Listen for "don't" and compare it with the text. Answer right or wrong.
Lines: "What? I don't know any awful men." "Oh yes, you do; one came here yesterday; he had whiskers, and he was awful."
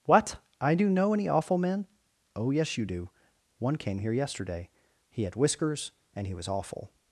wrong